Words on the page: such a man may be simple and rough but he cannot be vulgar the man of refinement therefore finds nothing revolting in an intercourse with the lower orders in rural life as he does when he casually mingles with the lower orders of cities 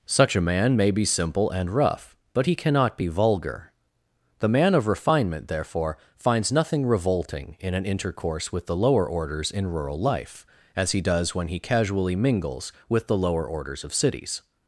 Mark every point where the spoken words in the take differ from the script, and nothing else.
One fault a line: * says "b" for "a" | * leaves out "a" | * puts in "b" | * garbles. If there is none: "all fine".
all fine